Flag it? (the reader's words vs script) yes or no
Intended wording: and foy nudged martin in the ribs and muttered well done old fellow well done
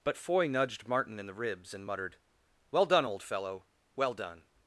yes